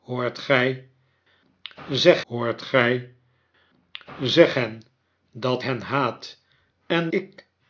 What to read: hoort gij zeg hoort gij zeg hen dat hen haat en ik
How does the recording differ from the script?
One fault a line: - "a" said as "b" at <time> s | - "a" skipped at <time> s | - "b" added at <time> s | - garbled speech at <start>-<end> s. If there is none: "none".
none